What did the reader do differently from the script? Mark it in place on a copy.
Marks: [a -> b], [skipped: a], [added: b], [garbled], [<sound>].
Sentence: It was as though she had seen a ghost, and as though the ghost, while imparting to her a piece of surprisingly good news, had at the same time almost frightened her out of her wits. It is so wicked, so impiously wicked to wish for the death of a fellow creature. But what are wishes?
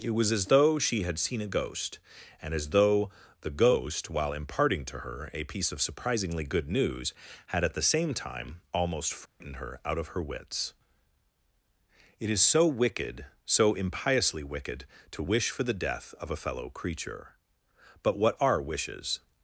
It was as though she had seen a ghost, and as though the ghost, while imparting to her a piece of surprisingly good news, had at the same time almost frightened [dropout] her out of her wits. It is so wicked, so impiously wicked to wish for the death of a fellow creature. But what are wishes?